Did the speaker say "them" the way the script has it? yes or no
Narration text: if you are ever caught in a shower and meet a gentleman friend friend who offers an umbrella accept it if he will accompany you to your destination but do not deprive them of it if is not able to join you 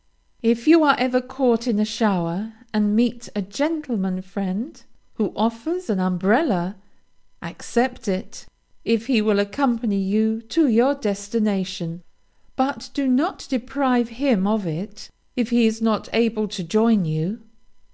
no